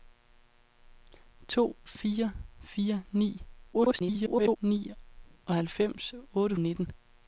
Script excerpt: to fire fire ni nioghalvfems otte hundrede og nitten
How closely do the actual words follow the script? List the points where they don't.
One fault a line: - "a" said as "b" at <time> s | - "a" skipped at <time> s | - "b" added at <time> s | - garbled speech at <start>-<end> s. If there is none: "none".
- garbled speech at 3.7-4.6 s
- "hundrede" skipped at 6.5 s